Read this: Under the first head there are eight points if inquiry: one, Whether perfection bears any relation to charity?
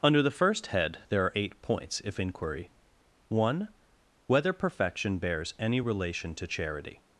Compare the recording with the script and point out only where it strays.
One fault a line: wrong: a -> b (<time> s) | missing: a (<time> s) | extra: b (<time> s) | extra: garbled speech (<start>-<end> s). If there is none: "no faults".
no faults